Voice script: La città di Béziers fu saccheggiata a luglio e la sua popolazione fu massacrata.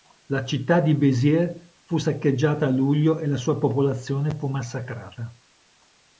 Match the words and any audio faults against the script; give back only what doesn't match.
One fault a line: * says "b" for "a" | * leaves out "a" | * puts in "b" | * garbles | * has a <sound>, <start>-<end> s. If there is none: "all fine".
all fine